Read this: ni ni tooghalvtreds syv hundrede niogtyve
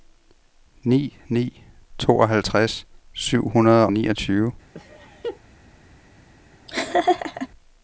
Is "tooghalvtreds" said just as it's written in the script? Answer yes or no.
yes